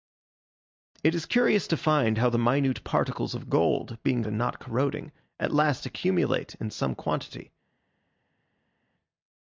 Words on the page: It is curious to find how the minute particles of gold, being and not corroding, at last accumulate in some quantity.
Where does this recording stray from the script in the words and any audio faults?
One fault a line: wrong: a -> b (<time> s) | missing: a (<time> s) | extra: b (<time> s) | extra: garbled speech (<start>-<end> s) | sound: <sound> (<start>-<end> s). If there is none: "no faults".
no faults